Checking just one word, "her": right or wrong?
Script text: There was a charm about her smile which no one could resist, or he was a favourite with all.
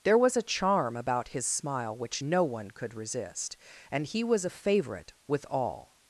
wrong